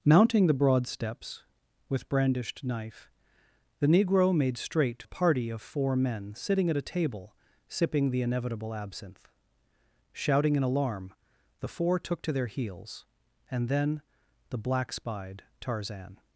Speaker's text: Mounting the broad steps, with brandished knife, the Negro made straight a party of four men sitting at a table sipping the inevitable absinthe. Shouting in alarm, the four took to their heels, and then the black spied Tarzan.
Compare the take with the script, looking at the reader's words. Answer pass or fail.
pass